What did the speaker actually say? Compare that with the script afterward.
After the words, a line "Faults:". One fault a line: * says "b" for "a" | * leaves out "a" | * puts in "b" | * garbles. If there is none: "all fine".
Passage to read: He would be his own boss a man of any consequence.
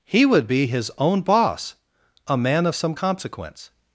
He would be his own boss a man of some consequence.
Faults:
* says "some" for "any"